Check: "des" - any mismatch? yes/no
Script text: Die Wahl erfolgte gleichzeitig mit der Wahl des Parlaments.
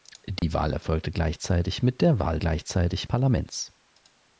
yes